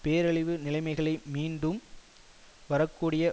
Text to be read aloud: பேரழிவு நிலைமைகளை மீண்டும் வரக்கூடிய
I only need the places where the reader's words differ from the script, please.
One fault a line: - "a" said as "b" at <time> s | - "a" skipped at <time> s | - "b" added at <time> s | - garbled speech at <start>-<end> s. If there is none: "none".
none